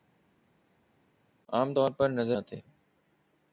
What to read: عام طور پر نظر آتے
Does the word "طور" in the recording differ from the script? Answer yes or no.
no